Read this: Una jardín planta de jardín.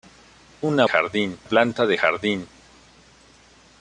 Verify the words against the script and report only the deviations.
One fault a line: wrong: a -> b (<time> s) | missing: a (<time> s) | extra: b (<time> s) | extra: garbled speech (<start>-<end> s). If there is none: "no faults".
no faults